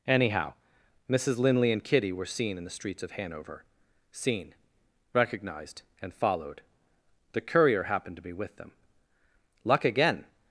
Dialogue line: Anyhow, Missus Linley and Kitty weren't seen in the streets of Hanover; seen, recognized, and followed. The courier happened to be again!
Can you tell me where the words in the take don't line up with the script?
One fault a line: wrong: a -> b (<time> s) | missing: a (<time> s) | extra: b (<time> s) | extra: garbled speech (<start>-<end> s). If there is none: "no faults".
wrong: weren't -> were (2.1 s)
extra: with them luck (8.3 s)